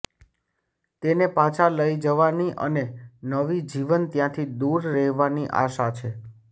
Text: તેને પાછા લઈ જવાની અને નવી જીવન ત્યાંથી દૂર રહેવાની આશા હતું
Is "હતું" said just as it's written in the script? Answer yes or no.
no